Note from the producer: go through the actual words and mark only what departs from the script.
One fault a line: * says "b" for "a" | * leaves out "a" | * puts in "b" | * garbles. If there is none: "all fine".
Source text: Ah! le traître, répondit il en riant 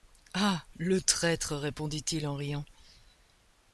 all fine